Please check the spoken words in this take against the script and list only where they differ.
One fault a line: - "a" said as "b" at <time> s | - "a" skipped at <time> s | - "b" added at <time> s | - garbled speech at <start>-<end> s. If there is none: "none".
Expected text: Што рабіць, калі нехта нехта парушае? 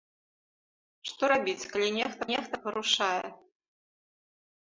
none